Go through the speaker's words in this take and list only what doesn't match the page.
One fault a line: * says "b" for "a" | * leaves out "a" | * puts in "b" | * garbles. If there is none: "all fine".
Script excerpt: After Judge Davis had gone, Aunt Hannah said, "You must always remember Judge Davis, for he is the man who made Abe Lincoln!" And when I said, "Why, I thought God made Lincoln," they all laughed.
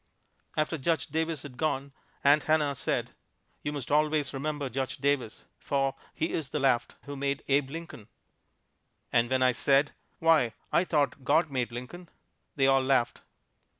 * says "laughed" for "man"